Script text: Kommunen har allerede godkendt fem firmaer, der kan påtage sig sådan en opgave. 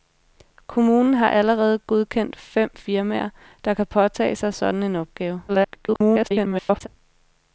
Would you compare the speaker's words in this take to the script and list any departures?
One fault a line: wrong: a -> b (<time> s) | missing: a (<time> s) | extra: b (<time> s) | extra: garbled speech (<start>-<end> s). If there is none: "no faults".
extra: garbled speech (5.5-6.9 s)